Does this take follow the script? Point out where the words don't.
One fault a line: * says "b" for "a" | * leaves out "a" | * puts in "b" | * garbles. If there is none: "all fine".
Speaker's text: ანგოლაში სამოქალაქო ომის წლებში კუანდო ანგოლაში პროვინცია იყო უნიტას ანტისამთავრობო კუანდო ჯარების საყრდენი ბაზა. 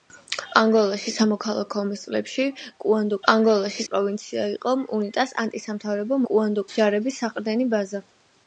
all fine